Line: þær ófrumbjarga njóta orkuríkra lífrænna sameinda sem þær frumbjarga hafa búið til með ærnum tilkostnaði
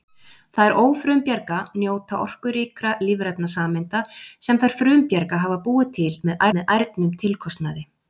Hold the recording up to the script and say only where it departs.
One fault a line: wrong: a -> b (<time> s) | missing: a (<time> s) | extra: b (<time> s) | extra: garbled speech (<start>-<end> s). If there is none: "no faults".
extra: með (6.6 s)